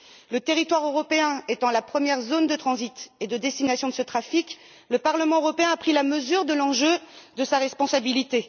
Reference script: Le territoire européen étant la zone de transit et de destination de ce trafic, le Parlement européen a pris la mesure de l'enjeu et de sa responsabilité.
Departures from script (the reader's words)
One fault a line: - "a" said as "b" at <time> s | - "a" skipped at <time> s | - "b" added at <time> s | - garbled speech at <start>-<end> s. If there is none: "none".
- "première" added at 1.8 s